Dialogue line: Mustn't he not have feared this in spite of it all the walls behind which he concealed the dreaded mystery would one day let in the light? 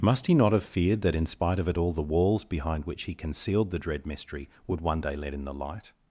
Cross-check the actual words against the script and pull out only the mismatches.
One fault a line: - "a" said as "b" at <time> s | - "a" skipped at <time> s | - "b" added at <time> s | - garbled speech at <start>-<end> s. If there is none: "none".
- "Mustn't" said as "Must" at 0.0 s
- "this" said as "that" at 1.0 s
- "dreaded" said as "dread" at 3.8 s